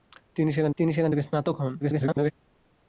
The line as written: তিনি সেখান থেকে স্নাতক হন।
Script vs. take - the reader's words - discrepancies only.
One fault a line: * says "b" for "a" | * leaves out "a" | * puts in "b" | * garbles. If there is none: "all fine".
* puts in "তিনি সেখান"
* garbles